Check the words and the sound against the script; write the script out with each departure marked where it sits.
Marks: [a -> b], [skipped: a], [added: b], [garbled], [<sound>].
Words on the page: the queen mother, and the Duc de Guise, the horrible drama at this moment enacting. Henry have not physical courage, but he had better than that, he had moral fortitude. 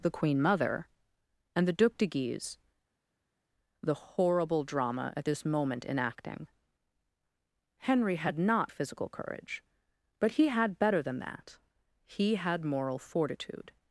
the queen mother, and the Duc de Guise, the horrible drama at this moment enacting. Henry [have -> had] not physical courage, but he had better than that, he had moral fortitude.